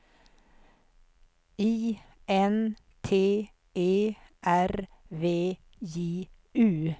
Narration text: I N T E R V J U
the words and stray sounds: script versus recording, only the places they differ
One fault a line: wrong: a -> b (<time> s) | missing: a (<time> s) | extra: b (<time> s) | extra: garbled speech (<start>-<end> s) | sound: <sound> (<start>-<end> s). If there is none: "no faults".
no faults